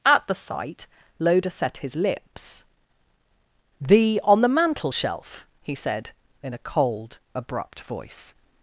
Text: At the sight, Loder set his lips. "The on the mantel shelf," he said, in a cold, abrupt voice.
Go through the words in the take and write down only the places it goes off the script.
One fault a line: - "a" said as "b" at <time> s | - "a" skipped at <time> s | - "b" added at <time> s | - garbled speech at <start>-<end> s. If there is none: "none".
none